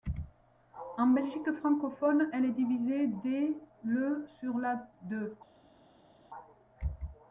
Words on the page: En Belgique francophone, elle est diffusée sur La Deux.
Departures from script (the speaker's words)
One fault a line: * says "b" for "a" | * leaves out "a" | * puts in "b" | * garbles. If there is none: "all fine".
* puts in "dès le"